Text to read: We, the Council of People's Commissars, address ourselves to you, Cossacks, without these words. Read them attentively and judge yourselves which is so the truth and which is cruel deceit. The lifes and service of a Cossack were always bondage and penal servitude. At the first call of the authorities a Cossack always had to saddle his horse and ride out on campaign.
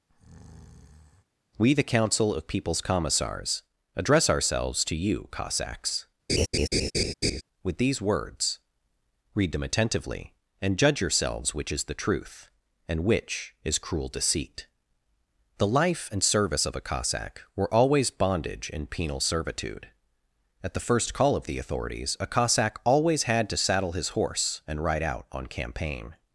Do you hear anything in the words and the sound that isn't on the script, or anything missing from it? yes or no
yes